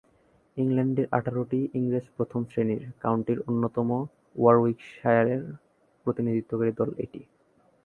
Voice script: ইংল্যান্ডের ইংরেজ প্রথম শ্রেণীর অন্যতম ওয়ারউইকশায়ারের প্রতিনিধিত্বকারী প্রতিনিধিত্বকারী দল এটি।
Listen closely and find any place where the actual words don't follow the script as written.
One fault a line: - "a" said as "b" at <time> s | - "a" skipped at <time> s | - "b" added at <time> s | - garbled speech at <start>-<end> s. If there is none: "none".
- "আঠারোটি" added at 1.1 s
- "কাউন্টির" added at 3.0 s
- "প্রতিনিধিত্বকারী" skipped at 6.7 s